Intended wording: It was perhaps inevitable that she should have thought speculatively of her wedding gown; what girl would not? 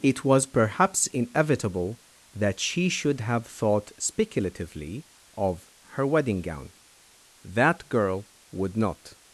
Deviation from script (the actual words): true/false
true